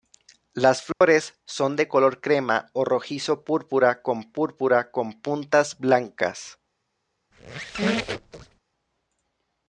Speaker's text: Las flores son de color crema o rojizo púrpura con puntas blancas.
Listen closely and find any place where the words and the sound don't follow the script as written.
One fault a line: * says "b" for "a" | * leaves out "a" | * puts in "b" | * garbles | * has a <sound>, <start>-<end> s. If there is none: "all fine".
* has a dropout, 0.9-1.0 s
* puts in "púrpura con"
* has a squeak, 7.3-8.6 s